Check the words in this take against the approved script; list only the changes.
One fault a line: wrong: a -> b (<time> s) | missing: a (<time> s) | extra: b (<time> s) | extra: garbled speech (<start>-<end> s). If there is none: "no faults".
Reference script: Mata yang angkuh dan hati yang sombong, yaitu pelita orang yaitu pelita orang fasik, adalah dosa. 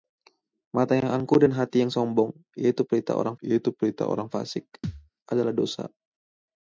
no faults